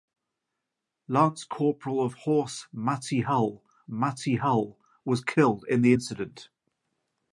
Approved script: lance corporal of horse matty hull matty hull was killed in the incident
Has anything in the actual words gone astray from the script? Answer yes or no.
no